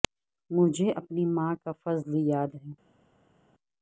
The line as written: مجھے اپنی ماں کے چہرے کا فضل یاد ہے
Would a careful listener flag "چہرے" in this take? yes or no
yes